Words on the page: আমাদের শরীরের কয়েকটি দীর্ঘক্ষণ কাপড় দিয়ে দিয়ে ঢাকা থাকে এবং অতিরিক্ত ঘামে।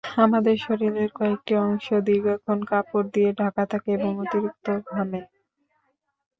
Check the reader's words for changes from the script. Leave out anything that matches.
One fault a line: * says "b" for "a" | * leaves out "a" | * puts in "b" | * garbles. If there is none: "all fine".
* puts in "অংশ"
* leaves out "দিয়ে"